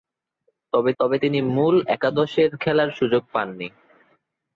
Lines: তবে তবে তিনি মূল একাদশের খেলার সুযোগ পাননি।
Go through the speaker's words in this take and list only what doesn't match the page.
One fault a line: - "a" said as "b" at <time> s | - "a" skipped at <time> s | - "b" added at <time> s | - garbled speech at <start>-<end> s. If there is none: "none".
none